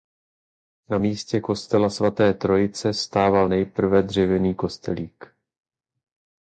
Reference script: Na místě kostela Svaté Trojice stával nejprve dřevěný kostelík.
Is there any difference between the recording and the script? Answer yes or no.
no